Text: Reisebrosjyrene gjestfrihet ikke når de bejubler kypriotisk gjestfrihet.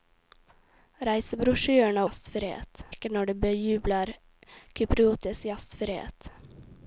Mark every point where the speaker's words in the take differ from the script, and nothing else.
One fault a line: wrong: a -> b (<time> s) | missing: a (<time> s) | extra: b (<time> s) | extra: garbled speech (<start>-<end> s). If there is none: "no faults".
no faults